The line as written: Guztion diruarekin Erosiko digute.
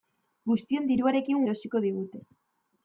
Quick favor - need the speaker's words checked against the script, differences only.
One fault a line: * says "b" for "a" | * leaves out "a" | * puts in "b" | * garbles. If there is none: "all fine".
all fine